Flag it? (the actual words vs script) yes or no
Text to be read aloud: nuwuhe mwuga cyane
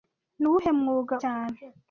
no